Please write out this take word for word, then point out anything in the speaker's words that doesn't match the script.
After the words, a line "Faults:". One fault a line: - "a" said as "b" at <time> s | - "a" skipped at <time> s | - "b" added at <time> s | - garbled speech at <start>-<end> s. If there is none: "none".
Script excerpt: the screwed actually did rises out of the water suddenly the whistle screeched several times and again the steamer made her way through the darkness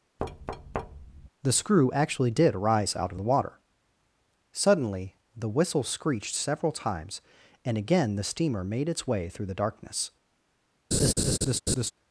the screw actually did rise out of the water suddenly the whistle screeched several times and again the steamer made its way through the darkness
Faults:
- "screwed" said as "screw" at 1.5 s
- "rises" said as "rise" at 2.6 s
- "her" said as "its" at 8.9 s